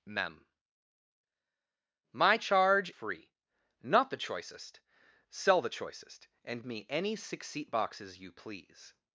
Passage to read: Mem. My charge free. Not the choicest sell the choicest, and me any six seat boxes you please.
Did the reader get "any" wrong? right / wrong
right